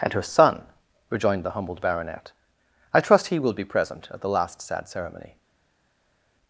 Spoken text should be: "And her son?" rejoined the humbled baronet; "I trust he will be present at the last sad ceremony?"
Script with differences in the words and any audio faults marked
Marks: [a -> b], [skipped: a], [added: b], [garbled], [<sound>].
"And her son?" rejoined the humbled baronet; "I trust he will be present at the last sad ceremony?"